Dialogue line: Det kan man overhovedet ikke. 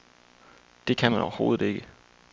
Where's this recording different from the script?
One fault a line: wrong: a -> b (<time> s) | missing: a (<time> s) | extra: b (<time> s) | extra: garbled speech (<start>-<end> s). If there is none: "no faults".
no faults